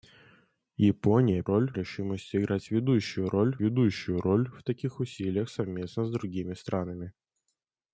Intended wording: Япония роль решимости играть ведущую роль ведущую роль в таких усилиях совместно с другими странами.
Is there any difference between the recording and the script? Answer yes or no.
no